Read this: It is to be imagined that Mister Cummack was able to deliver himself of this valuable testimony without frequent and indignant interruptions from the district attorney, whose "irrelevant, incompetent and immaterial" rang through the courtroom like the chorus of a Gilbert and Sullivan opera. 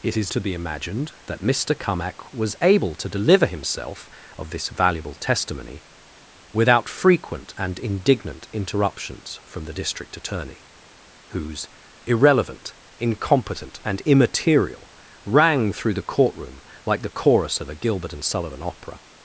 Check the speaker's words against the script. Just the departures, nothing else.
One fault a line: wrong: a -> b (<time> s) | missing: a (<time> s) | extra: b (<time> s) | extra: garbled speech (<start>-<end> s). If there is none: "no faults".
no faults